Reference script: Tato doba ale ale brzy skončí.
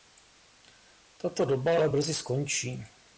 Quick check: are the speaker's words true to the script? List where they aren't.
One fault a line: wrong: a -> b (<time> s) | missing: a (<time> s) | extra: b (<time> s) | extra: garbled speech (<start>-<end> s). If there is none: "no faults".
missing: ale (1.9 s)